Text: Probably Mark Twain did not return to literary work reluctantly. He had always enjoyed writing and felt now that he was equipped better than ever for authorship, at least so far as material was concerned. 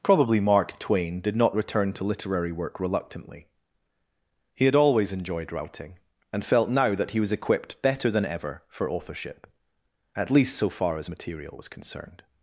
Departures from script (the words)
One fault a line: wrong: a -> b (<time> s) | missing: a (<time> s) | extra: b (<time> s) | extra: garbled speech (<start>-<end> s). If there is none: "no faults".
no faults